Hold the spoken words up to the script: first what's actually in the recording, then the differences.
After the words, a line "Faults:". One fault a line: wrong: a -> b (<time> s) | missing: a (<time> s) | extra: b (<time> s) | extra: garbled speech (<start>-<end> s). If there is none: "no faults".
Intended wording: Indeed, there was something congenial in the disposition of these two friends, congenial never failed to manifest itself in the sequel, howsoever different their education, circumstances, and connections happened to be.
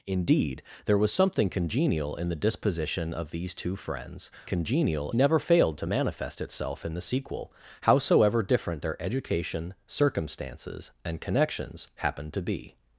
Indeed, there was something congenial in the disposition of these two friends, congenial never failed to manifest itself in the sequel, howsoever different their education, circumstances, and connections happened to be.
Faults:
no faults